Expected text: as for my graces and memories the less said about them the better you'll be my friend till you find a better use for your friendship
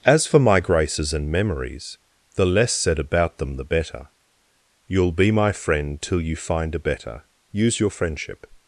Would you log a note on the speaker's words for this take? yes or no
yes